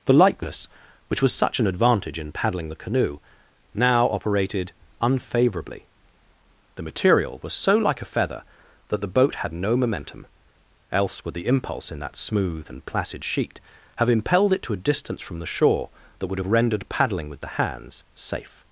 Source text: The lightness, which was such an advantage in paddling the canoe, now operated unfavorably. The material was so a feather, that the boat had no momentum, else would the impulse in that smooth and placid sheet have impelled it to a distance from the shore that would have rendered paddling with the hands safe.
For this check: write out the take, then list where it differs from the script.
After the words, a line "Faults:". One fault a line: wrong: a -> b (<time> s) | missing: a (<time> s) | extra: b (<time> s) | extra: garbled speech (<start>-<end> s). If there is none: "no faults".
The lightness, which was such an advantage in paddling the canoe, now operated unfavorably. The material was so like a feather, that the boat had no momentum, else would the impulse in that smooth and placid sheet have impelled it to a distance from the shore that would have rendered paddling with the hands safe.
Faults:
extra: like (7.8 s)